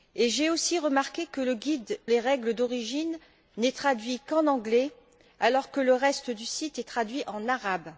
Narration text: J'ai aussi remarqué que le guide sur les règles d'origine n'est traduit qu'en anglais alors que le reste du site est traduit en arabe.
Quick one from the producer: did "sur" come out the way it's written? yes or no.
no